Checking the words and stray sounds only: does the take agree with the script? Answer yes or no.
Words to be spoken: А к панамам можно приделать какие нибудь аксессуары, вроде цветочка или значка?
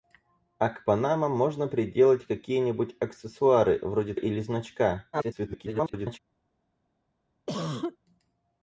no